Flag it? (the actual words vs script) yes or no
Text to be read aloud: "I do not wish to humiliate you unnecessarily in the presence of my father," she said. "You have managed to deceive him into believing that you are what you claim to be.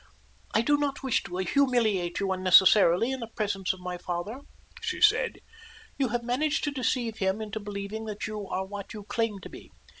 no